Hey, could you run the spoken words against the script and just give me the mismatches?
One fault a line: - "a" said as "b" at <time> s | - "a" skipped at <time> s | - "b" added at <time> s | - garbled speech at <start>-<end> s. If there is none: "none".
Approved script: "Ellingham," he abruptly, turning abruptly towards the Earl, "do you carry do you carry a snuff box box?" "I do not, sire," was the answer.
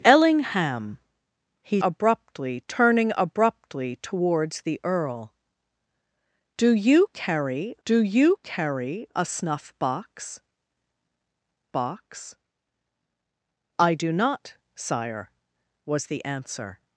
none